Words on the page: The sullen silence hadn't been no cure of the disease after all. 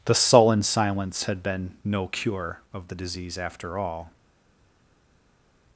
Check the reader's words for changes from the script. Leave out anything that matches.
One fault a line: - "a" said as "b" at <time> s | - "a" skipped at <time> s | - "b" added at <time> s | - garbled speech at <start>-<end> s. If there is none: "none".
- "hadn't" said as "had" at 1.2 s